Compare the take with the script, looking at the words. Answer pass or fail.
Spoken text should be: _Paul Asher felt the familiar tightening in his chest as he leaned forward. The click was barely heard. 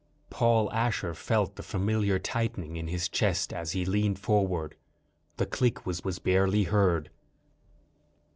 fail